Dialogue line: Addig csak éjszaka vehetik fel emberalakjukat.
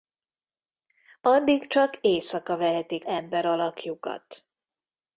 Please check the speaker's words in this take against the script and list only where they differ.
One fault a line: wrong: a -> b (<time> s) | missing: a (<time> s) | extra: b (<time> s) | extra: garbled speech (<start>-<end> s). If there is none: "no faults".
missing: fel (3.0 s)